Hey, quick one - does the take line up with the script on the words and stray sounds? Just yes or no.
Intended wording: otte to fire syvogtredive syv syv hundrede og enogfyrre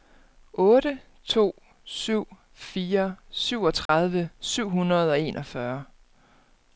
no